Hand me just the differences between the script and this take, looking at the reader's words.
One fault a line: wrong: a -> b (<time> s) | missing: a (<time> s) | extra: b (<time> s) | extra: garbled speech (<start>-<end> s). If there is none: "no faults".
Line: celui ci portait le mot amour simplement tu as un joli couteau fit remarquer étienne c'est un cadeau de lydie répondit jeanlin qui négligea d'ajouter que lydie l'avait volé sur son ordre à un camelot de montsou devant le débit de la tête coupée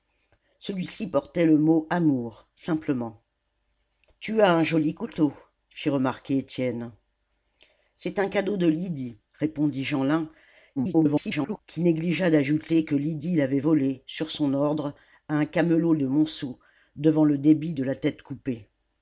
extra: garbled speech (10.8-11.6 s)